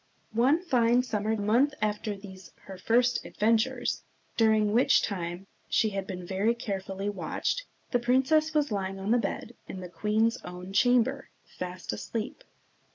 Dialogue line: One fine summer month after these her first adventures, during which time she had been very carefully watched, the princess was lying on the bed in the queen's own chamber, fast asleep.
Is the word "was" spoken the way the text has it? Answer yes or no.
yes